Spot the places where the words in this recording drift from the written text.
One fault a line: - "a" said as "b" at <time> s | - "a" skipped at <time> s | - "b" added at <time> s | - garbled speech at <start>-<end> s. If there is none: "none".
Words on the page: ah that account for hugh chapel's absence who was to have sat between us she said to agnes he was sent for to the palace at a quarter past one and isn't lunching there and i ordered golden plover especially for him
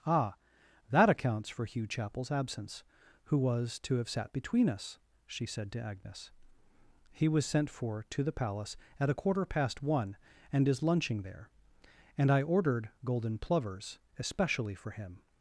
- "account" said as "accounts" at 1.1 s
- "isn't" said as "is" at 10.7 s
- "plover" said as "plovers" at 13.4 s